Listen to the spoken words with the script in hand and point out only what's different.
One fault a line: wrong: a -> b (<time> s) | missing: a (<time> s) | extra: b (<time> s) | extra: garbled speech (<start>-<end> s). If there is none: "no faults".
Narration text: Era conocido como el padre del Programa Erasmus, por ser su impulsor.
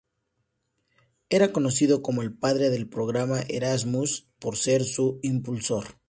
no faults